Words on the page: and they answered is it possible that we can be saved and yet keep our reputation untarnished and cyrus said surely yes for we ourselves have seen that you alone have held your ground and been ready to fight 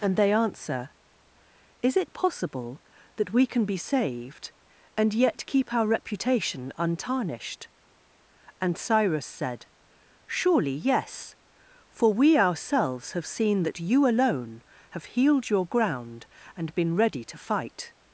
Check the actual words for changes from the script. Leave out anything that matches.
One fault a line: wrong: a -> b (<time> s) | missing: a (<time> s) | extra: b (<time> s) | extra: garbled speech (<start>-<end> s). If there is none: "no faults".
wrong: answered -> answer (0.3 s)
wrong: held -> healed (15.0 s)